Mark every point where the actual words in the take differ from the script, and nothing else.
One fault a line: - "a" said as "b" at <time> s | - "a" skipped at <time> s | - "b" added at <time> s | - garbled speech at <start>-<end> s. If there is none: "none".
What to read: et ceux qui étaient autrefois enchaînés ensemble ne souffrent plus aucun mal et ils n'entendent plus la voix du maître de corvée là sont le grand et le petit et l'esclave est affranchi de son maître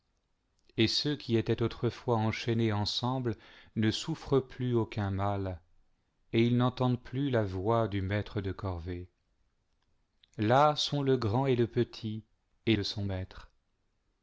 - "l'esclave est affranchi" skipped at 12.8 s